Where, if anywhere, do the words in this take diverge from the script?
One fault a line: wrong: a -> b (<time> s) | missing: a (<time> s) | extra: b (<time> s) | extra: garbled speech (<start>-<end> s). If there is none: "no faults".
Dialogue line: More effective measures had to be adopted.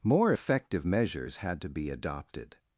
no faults